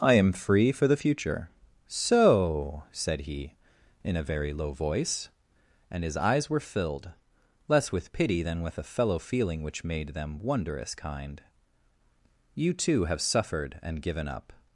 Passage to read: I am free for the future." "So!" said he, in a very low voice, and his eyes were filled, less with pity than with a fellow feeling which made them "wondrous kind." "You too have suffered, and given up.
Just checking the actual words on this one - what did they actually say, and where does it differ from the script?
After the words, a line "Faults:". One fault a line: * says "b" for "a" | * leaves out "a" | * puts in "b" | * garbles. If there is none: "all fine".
I am free for the future." "So!" said he, in a very low voice, and his eyes were filled, less with pity than with a fellow feeling which made them "wondrous kind." "You too have suffered, and given up.
Faults:
all fine